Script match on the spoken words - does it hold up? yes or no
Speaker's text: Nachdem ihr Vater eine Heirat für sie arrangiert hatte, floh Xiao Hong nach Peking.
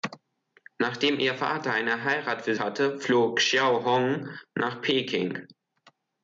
no